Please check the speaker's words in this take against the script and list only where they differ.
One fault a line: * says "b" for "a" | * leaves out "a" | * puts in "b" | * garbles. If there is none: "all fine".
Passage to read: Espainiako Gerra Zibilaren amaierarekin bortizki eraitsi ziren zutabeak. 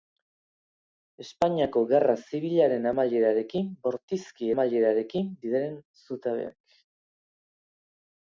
* says "amaierarekin" for "eraitsi"